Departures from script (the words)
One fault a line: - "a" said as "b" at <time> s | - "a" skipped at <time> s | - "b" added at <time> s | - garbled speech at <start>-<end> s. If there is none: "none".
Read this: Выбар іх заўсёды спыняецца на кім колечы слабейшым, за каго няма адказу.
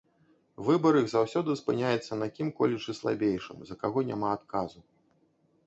none